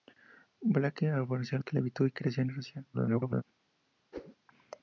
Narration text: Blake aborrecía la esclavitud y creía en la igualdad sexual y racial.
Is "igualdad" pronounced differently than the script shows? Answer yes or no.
yes